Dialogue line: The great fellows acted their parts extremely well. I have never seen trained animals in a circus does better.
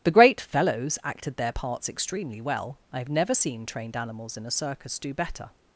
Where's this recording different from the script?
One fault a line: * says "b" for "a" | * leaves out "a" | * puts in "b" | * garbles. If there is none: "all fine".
* says "do" for "does"